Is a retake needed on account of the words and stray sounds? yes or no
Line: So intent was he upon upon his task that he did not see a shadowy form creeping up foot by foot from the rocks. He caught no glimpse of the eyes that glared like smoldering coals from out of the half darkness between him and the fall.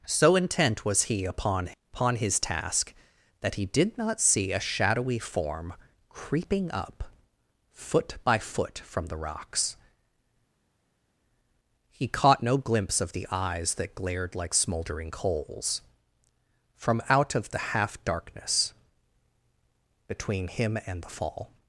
no